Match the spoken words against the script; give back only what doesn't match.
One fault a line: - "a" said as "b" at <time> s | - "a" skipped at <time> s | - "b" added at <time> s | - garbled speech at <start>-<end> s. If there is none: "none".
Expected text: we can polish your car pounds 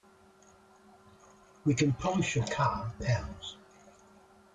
none